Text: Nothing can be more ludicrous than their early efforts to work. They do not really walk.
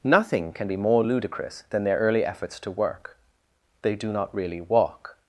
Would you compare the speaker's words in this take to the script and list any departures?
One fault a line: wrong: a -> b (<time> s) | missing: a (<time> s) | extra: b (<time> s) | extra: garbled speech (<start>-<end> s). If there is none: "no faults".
no faults